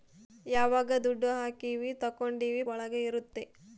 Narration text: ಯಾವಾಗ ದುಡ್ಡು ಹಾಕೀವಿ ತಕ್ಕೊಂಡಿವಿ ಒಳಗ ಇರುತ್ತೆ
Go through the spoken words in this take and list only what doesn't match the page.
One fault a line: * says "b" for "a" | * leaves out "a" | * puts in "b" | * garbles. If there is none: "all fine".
all fine